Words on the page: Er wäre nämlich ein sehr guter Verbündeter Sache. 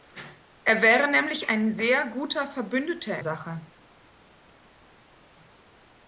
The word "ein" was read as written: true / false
true